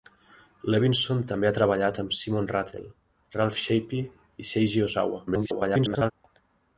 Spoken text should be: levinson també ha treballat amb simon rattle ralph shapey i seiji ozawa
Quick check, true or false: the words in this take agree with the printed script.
false